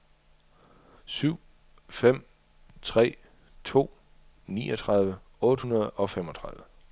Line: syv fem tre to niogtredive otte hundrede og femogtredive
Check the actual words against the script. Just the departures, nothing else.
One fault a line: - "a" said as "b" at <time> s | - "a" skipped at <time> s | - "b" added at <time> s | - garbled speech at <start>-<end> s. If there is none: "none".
none